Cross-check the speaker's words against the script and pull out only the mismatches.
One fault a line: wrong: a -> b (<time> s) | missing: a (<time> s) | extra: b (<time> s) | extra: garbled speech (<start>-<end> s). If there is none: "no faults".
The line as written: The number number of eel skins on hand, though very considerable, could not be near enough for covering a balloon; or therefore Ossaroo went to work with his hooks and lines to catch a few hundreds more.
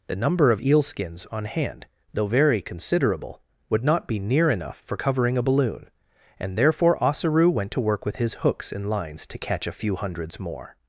missing: number (0.5 s)
wrong: could -> would (3.7 s)
wrong: or -> and (6.4 s)